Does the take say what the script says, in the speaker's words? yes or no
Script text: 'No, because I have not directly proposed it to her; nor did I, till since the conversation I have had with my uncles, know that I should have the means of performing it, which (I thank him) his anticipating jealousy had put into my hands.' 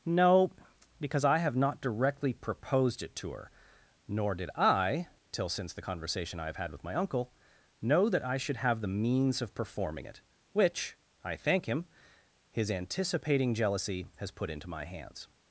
no